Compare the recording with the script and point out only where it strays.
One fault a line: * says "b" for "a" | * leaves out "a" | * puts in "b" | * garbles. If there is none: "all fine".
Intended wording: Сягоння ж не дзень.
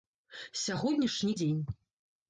all fine